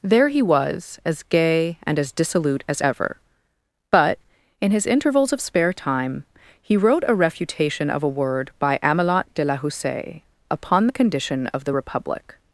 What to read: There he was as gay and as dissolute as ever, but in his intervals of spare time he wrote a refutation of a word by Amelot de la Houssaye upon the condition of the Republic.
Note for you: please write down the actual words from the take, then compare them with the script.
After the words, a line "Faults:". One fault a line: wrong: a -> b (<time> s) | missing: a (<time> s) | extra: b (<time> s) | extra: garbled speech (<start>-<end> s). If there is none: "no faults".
There he was as gay and as dissolute as ever, but in his intervals of spare time he wrote a refutation of a word by Amelot de la Houssaye upon the condition of the Republic.
Faults:
no faults